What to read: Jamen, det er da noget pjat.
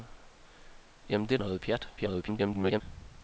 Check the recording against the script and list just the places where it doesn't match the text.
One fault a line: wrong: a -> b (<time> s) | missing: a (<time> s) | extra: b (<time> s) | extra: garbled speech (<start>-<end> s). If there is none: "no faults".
missing: da (1.4 s)
extra: garbled speech (2.0-2.8 s)